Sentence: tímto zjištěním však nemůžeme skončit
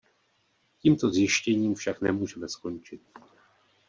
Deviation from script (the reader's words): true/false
false